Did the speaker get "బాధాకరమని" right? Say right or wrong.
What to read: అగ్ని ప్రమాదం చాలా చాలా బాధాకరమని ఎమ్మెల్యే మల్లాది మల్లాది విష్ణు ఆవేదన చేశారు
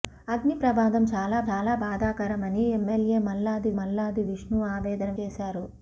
right